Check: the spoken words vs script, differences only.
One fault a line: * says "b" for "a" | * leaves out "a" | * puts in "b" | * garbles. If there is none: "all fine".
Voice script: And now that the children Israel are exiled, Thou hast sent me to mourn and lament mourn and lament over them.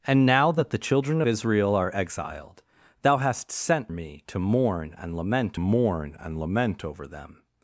all fine